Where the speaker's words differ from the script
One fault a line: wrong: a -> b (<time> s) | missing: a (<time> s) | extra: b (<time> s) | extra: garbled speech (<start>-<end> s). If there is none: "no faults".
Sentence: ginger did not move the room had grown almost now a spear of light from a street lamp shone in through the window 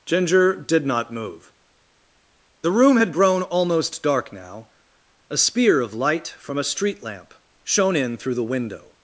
extra: dark (4.0 s)